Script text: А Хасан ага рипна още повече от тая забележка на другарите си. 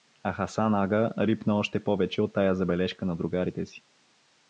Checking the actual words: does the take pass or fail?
pass